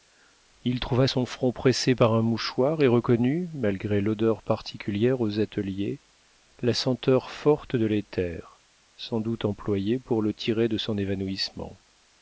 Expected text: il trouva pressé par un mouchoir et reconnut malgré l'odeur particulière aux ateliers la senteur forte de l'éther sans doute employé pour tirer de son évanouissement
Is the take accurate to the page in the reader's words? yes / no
no